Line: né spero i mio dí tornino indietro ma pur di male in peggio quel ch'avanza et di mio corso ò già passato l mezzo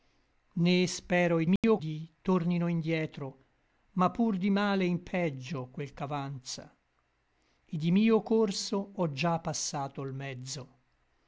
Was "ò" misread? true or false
false